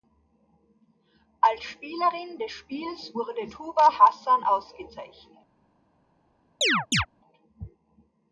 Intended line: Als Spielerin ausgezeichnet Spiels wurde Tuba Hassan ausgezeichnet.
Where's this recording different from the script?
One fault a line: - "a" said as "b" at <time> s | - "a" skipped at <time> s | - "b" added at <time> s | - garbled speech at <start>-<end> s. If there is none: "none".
- "ausgezeichnet" said as "des" at 2.4 s